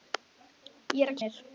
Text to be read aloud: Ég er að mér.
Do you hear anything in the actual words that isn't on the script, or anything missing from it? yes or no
no